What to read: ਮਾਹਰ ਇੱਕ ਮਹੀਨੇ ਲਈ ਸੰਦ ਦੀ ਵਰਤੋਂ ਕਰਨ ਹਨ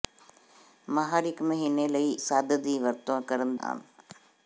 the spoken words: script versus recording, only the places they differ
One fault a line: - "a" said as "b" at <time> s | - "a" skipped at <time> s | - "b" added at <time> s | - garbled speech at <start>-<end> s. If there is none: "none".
none